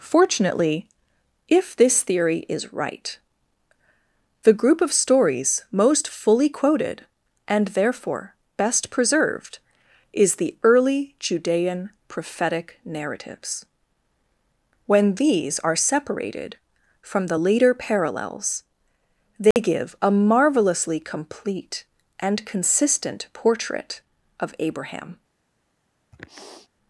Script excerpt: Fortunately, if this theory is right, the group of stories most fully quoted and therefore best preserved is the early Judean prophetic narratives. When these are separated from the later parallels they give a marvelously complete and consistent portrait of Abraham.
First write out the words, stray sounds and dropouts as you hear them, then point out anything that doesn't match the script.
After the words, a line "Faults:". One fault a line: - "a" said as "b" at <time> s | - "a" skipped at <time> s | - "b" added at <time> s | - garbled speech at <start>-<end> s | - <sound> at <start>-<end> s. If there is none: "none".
Fortunately, if this theory is right, the group of stories most fully quoted and therefore best preserved is the early Judean prophetic narratives. When these are separated from the later parallels they give a marvelously complete and consistent portrait of Abraham.
Faults:
- dropout at 19.5-19.6 s
- sniff at 26.1-26.7 s